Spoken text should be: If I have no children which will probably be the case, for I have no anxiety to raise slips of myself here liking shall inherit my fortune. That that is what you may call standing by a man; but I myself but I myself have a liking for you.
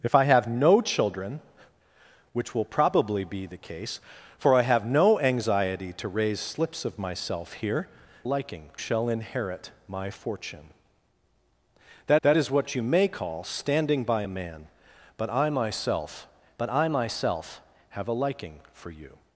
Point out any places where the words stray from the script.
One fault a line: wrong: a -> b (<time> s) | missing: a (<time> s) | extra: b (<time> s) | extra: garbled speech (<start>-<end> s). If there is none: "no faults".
no faults